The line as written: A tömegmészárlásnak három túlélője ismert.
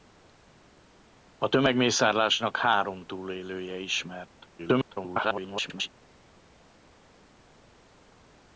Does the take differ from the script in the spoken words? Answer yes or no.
yes